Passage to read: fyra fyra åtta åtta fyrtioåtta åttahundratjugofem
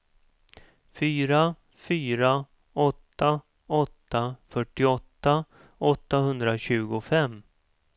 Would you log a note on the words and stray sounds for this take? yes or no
no